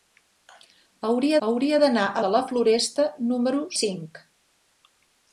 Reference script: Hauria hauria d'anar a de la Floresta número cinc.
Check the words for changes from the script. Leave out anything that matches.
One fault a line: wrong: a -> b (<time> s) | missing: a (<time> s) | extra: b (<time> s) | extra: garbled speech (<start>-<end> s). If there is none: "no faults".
no faults